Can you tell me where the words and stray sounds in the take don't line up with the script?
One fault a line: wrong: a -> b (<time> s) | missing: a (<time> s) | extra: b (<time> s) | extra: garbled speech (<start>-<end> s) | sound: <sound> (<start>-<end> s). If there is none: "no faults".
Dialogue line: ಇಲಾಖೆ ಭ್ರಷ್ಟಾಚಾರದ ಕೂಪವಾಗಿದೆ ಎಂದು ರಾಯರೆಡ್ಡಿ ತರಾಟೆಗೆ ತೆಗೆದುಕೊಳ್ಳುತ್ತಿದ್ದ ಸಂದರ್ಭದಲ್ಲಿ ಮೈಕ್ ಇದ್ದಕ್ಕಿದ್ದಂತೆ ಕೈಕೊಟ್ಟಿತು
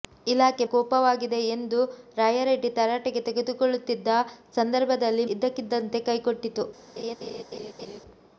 missing: ಭ್ರಷ್ಟಾಚಾರದ (0.7 s)
missing: ಮೈಕ್ (5.3 s)
sound: laugh (7.0-8.0 s)